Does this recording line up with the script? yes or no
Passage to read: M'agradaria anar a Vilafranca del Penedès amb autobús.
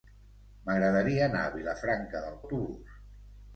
no